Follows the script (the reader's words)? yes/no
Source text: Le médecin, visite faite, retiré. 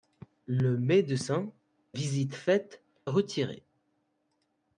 yes